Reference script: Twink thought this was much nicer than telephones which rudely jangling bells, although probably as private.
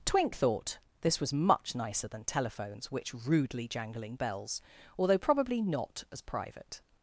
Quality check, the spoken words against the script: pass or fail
fail